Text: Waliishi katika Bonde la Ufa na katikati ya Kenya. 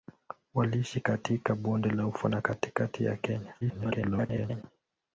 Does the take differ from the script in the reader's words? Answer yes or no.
yes